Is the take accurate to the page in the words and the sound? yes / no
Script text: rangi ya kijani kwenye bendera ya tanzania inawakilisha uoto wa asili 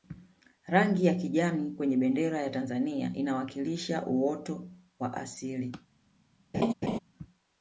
no